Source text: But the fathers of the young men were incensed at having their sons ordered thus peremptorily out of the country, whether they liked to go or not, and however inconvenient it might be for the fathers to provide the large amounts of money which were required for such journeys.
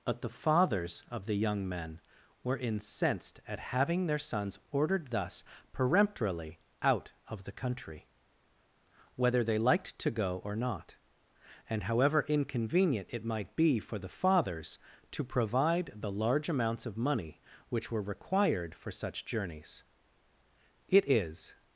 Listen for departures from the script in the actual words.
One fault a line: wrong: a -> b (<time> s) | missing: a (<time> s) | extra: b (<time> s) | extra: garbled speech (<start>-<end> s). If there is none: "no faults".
extra: It is (20.9 s)